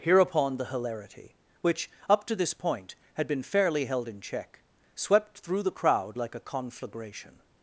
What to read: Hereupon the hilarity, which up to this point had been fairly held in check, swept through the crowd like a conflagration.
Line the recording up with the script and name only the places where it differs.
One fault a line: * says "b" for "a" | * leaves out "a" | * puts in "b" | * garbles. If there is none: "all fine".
all fine